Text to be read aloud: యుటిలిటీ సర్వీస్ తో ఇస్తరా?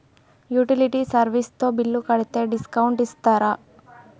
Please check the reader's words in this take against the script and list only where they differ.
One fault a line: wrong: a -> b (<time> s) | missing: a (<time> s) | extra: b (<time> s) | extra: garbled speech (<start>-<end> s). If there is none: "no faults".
extra: బిల్లు కడితే డిస్కౌంట్ (1.8 s)